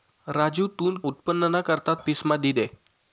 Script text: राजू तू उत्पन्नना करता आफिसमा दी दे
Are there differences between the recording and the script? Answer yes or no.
no